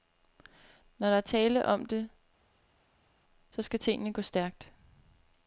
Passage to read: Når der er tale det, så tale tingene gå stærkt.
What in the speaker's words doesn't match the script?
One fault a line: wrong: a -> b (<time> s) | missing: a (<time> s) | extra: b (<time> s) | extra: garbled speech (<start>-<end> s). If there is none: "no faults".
extra: om (1.6 s)
wrong: tale -> skal (3.6 s)